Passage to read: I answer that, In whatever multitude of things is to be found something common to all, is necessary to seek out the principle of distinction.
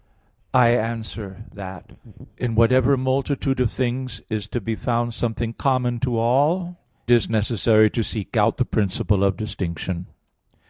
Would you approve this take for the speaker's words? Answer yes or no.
yes